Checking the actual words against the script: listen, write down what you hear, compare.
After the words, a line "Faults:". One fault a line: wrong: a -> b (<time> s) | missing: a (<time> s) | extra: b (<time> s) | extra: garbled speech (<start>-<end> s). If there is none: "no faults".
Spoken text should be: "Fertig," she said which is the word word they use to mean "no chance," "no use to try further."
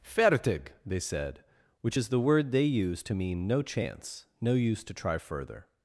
"Fertig," they said which is the word they use to mean "no chance," "no use to try further."
Faults:
wrong: she -> they (0.8 s)
missing: word (2.5 s)